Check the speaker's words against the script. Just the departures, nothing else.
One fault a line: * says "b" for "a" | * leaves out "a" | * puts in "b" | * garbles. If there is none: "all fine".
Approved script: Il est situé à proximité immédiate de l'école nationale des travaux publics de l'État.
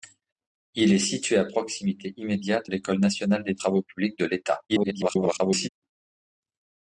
* leaves out "de"
* garbles